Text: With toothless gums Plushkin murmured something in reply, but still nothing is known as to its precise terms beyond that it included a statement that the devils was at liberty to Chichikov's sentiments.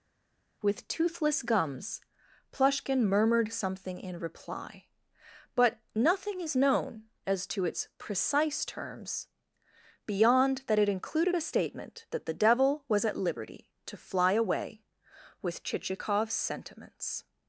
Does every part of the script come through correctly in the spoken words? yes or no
no